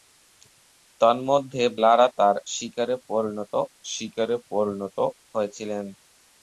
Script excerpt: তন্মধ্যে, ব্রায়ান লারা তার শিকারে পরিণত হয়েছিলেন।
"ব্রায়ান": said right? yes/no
no